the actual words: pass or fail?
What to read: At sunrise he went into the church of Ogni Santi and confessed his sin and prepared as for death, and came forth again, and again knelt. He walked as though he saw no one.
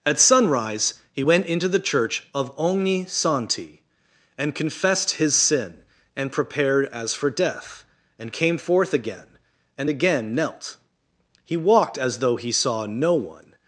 pass